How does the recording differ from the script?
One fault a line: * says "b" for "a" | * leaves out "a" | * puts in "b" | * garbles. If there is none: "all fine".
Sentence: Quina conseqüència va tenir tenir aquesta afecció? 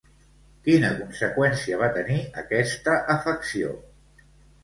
* leaves out "tenir"